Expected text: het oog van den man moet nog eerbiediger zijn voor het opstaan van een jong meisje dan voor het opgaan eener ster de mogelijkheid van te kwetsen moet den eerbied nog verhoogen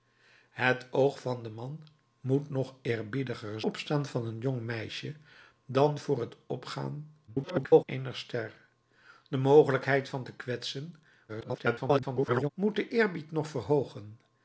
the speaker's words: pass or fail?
fail